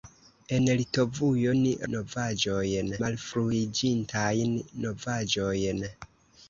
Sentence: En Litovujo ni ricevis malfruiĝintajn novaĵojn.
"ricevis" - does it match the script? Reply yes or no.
no